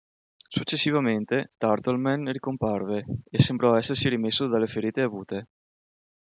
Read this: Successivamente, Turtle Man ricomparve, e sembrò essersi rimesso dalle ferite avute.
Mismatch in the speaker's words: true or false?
false